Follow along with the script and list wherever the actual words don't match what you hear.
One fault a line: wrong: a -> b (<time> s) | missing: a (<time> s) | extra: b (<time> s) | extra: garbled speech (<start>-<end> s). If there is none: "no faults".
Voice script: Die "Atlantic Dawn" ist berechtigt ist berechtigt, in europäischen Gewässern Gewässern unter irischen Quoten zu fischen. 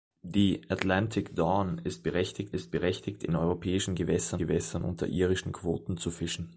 no faults